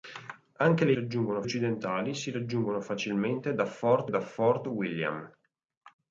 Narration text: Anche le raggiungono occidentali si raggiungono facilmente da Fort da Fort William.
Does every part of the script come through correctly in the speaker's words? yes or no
yes